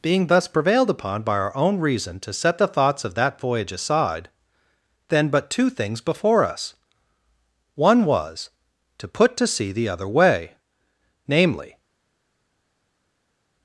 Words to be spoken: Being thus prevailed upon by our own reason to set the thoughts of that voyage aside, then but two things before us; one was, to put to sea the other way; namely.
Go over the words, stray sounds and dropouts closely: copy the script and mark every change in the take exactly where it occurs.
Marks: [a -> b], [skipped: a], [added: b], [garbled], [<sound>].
Being thus prevailed upon by our own reason to set the thoughts of that voyage aside, then but two things before us; one was, to put to sea the other way; namely.